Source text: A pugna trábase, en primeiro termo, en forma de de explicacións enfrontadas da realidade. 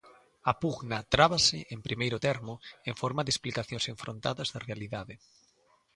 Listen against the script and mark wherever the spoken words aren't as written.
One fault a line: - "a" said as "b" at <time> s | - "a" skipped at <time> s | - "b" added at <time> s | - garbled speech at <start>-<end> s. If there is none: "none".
- "de" skipped at 3.3 s